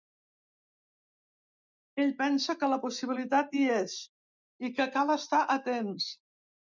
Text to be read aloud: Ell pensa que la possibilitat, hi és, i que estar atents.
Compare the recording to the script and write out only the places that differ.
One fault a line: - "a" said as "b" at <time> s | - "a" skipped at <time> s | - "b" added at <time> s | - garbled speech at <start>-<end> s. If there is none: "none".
- "cal" added at 5.0 s